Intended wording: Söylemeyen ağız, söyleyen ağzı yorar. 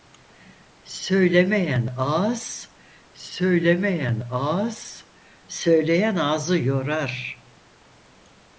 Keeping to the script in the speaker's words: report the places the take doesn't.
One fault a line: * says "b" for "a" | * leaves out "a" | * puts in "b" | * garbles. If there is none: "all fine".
* puts in "söylemeyen ağız"